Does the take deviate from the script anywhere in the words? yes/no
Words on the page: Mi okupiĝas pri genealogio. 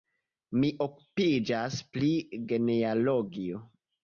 no